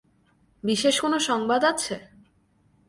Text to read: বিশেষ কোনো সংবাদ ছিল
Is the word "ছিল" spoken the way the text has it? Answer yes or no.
no